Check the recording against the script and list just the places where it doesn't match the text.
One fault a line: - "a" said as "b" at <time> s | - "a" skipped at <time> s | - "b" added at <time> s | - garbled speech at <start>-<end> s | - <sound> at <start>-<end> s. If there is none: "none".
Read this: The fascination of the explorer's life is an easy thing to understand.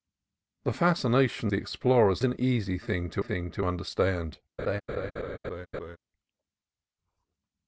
- "of" skipped at 1.5 s
- "life is an easy" said as "an easy thing to" at 2.2 s
- laugh at 4.6-6.0 s